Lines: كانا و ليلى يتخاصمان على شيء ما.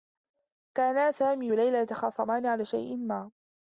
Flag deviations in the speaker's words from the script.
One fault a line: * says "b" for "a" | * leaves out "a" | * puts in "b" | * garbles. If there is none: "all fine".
* puts in "سامي"